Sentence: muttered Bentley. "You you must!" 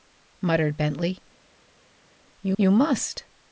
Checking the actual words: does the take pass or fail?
pass